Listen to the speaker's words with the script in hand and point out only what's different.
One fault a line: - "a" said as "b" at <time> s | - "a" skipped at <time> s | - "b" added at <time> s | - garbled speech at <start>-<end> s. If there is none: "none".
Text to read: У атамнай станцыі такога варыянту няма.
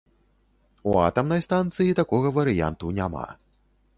none